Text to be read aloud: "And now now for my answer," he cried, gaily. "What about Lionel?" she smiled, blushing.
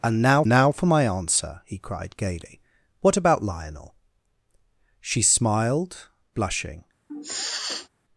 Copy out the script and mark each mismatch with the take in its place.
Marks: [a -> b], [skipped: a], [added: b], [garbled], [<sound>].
"And now now for my answer," he cried, gaily. "What about Lionel?" she smiled, blushing. [sniff]